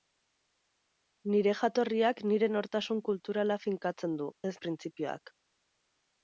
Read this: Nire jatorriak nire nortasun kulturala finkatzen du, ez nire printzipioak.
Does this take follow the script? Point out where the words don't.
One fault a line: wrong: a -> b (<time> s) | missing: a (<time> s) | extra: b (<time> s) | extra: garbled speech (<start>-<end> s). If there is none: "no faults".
missing: nire (4.6 s)